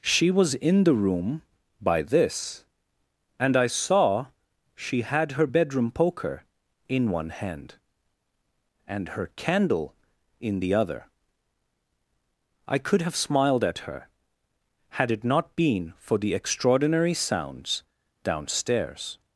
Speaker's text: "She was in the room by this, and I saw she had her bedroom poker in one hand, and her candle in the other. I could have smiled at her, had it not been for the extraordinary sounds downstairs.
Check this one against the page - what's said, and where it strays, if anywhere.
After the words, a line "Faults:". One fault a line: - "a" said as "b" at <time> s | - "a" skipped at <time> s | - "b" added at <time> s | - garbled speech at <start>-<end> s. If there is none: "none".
"She was in the room by this, and I saw she had her bedroom poker in one hand, and her candle in the other. I could have smiled at her, had it not been for the extraordinary sounds downstairs.
Faults:
none